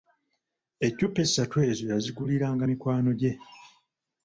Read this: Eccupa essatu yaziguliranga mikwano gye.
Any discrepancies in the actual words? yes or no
yes